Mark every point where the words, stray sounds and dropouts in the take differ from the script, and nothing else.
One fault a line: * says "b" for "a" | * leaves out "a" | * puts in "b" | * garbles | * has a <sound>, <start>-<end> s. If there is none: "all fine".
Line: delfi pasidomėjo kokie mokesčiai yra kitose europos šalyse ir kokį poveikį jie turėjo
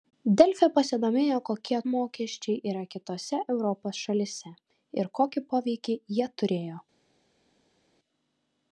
all fine